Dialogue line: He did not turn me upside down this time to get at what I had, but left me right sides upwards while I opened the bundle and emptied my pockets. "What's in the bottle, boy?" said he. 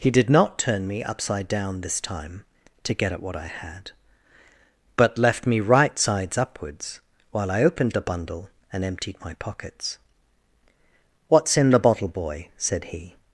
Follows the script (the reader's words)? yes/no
yes